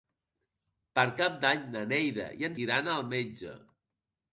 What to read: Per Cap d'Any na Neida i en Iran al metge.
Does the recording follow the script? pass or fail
pass